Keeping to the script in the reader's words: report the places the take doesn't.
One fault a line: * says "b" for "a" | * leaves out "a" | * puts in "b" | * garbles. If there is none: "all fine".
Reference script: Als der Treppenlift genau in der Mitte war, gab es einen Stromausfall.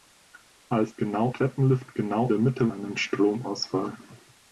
* says "genau" for "der"
* leaves out "in"
* leaves out "war gab es"